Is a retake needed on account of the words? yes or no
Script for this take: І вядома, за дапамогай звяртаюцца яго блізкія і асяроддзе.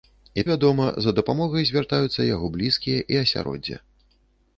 no